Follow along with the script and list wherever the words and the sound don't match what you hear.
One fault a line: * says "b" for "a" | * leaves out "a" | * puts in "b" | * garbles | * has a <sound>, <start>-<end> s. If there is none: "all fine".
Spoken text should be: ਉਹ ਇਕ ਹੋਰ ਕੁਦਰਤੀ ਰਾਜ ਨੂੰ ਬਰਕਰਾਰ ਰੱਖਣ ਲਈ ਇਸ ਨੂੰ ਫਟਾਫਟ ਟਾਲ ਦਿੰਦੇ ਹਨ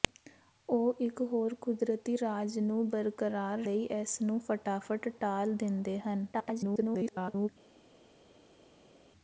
* leaves out "ਰੱਖਣ"
* garbles